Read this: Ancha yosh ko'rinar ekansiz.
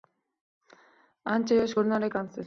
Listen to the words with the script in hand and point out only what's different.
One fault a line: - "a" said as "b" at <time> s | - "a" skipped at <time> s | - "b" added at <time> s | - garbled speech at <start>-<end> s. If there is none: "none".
none